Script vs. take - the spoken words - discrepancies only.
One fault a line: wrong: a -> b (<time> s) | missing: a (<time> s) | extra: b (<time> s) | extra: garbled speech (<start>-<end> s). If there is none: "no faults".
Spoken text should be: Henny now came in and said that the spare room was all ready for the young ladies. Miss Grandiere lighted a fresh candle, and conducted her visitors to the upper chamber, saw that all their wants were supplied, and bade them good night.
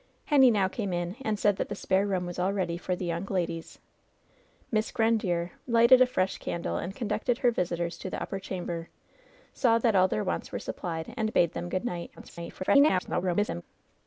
extra: garbled speech (12.2-13.6 s)